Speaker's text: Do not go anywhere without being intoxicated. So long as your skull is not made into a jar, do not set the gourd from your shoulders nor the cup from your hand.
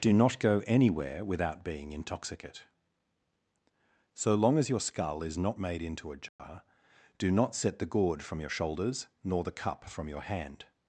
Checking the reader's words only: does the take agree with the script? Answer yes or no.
no